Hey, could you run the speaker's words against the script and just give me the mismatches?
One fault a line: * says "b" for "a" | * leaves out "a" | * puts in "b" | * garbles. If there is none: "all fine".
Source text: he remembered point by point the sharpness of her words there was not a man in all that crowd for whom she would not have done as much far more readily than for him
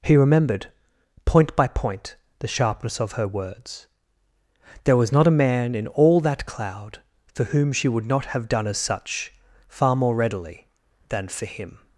* says "cloud" for "crowd"
* says "such" for "much"